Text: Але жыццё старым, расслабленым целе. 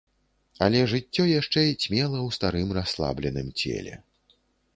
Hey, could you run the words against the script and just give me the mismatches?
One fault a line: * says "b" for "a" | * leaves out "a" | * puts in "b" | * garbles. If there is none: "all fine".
* puts in "яшчэ цьмела ў"